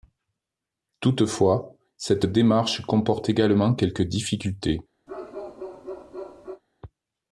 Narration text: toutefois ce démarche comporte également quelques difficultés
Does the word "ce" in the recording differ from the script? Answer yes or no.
yes